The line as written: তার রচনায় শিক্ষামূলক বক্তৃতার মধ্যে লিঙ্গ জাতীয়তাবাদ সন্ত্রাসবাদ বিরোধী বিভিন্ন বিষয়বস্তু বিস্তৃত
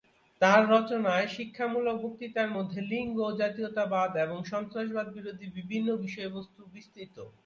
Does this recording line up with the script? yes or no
no